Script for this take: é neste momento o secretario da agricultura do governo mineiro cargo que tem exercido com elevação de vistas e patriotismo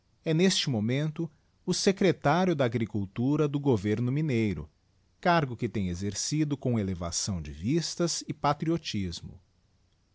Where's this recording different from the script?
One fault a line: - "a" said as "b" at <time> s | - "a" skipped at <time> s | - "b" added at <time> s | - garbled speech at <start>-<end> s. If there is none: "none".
none